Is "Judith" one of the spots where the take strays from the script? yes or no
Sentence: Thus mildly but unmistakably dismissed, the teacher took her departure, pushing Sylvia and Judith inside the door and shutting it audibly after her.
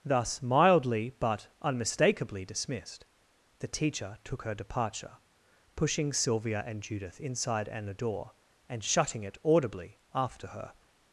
no